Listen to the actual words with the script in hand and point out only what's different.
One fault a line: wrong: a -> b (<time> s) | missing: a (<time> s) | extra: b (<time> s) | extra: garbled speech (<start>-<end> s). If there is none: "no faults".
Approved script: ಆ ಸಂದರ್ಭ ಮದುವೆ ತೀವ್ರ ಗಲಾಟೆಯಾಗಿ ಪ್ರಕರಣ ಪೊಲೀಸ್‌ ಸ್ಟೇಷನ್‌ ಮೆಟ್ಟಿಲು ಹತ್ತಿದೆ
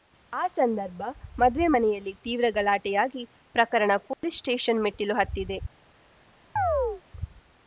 extra: ಮನೆಯಲ್ಲಿ (1.7 s)